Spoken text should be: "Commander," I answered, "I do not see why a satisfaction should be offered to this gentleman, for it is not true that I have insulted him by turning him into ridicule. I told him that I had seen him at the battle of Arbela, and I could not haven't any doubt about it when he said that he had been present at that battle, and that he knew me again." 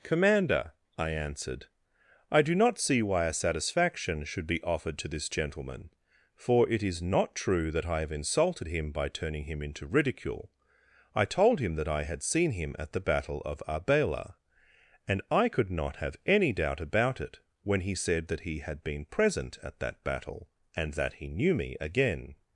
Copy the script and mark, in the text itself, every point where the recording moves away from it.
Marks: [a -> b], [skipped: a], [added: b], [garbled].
"Commander," I answered, "I do not see why a satisfaction should be offered to this gentleman, for it is not true that I have insulted him by turning him into ridicule. I told him that I had seen him at the battle of Arbela, and I could not [haven't -> have] any doubt about it when he said that he had been present at that battle, and that he knew me again."